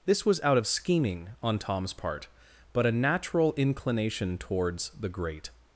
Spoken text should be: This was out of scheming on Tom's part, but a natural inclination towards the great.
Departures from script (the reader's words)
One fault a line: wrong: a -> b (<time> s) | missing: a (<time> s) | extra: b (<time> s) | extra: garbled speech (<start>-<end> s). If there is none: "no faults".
no faults